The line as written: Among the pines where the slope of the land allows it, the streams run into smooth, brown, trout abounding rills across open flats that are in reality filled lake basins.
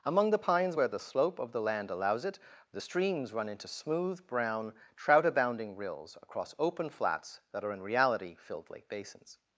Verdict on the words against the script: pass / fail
pass